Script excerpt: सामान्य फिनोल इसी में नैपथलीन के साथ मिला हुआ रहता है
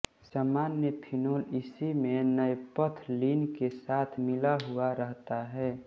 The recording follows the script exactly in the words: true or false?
true